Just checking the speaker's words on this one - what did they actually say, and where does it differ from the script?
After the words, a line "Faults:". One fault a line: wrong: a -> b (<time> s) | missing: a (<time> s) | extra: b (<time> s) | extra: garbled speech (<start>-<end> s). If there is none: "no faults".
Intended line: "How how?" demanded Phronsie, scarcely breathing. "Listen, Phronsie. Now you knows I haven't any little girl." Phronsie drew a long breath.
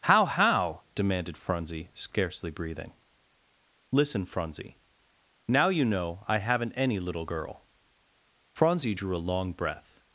"How how?" demanded Phronsie, scarcely breathing. "Listen, Phronsie. Now you know I haven't any little girl." Phronsie drew a long breath.
Faults:
wrong: knows -> know (5.8 s)